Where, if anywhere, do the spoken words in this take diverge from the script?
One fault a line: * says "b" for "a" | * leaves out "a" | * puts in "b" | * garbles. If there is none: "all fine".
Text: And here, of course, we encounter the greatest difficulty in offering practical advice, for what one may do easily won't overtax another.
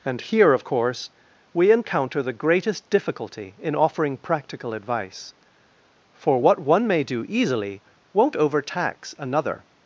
all fine